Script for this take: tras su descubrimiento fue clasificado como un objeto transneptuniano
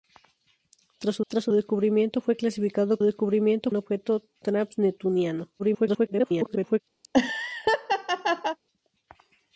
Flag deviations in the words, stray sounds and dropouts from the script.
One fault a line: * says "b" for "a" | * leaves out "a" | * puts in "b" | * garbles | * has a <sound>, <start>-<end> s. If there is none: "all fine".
* puts in "tras su"
* says "descubrimiento" for "como"
* garbles
* has a laugh, 7.0-8.6 s